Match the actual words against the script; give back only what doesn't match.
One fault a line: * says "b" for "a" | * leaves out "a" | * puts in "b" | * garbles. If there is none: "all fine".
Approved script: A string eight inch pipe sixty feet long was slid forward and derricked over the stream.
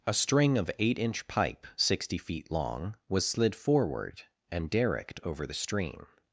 * puts in "of"